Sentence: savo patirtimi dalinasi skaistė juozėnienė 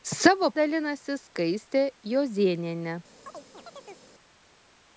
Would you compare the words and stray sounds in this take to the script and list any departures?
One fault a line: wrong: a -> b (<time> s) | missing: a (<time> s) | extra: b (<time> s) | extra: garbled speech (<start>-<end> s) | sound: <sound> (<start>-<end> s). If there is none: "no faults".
missing: patirtimi (0.5 s)
sound: chirp (3.3-4.1 s)